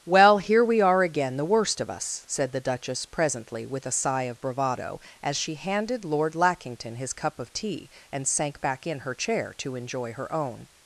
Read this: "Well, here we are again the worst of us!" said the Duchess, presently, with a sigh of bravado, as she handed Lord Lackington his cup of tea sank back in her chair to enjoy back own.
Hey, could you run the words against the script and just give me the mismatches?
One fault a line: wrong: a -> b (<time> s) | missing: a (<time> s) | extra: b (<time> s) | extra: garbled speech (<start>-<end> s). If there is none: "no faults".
extra: and (8.1 s)
wrong: back -> her (10.1 s)